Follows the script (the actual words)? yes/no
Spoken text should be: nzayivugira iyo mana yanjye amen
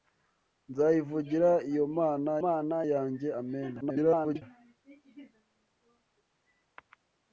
no